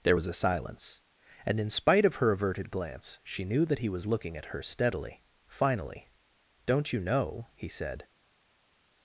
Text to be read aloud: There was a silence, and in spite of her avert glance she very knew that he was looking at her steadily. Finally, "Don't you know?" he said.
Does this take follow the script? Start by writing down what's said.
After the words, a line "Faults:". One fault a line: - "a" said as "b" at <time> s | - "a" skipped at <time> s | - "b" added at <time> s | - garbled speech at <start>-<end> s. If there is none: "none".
There was a silence, and in spite of her averted glance she knew that he was looking at her steadily. Finally, "Don't you know?" he said.
Faults:
- "avert" said as "averted" at 2.3 s
- "very" skipped at 3.4 s